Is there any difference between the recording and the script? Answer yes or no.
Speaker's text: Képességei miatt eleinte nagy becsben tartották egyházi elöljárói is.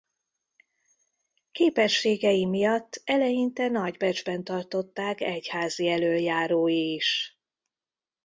no